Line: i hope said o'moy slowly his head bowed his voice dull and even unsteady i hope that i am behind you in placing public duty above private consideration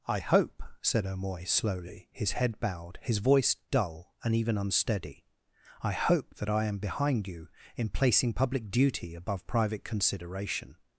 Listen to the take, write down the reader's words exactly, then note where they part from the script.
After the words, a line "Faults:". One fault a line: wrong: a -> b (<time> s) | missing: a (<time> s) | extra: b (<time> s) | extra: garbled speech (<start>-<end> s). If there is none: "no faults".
i hope said o'moy slowly his head bowed his voice dull and even unsteady i hope that i am behind you in placing public duty above private consideration
Faults:
no faults